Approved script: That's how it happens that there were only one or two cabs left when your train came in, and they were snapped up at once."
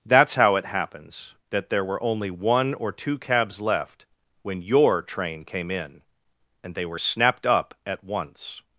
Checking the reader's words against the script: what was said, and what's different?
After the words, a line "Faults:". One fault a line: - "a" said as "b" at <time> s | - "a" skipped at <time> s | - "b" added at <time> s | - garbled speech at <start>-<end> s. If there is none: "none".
That's how it happens that there were only one or two cabs left when your train came in, and they were snapped up at once."
Faults:
none